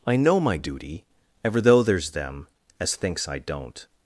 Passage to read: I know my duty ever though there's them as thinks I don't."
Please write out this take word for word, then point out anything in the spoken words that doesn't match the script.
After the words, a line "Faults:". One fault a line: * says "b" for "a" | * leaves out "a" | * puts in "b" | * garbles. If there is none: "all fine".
I know my duty ever though there's them as thinks I don't."
Faults:
all fine